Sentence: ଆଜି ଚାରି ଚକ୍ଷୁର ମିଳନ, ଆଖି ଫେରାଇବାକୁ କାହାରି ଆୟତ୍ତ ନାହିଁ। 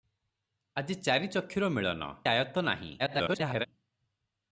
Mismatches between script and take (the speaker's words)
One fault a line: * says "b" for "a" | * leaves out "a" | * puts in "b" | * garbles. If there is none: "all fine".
* leaves out "ଆଖି ଫେରାଇବାକୁ କାହାରି"
* garbles